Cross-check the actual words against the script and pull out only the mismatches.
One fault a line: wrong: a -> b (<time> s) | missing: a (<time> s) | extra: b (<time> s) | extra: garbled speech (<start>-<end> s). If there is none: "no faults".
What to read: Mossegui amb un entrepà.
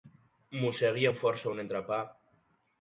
extra: força (1.2 s)